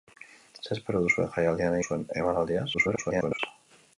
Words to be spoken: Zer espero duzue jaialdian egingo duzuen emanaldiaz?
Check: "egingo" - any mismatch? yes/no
yes